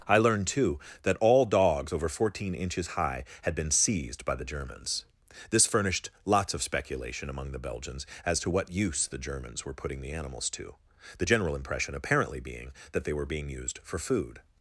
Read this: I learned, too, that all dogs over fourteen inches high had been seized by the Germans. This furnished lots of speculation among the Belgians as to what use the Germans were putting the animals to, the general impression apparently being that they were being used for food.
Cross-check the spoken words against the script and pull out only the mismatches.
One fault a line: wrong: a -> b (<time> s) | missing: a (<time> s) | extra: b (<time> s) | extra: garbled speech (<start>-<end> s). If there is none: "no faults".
no faults